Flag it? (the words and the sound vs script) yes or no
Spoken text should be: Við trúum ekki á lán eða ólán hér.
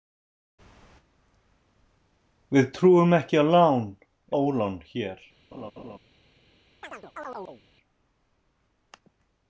yes